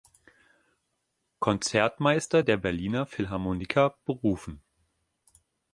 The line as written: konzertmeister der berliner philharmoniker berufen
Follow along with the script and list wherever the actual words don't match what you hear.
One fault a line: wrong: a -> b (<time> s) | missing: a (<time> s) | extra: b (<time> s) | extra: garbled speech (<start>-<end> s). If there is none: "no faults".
no faults